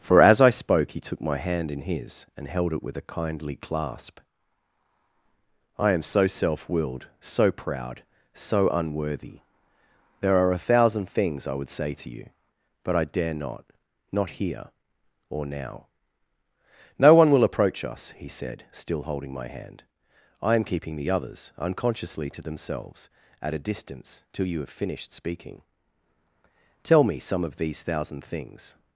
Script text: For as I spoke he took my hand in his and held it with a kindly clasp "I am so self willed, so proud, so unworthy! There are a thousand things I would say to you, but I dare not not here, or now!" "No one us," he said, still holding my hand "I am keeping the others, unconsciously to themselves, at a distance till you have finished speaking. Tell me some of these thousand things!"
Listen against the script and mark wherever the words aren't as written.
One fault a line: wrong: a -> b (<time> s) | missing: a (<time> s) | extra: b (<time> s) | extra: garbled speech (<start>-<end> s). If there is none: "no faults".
extra: will approach (17.3 s)